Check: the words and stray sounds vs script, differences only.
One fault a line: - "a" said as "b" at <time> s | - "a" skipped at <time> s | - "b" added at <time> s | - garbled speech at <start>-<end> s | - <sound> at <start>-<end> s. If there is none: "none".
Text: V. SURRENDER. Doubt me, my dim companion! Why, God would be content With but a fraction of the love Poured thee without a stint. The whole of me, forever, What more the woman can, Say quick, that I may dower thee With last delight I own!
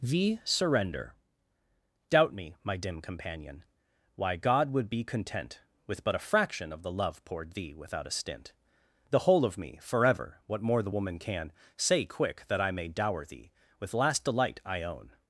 none